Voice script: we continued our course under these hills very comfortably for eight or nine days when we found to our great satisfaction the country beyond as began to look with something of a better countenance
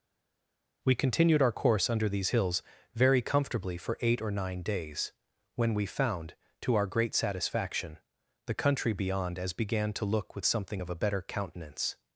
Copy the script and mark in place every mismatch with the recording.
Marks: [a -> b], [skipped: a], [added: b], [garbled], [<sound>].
we continued our course under these hills very comfortably for eight or nine days when we found to our great satisfaction the country beyond as began to look with something of a better countenance